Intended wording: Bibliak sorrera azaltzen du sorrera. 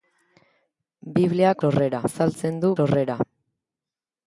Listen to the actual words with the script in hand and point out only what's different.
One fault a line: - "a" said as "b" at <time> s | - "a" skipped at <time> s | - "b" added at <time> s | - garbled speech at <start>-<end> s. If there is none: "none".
none